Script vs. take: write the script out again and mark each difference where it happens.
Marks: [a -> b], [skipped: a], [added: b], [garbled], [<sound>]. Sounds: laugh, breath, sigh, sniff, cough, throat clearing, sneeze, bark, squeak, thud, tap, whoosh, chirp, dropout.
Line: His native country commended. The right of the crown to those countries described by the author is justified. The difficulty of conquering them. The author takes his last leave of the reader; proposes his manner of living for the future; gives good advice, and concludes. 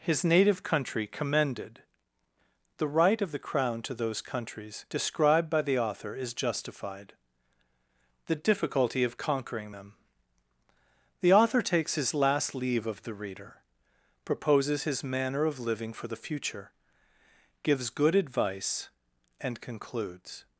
His native country commended. The right of the crown to those countries described by the author is justified. The difficulty of conquering them. The author takes his last leave of the reader; proposes his manner of living for the future; gives good advice, and concludes.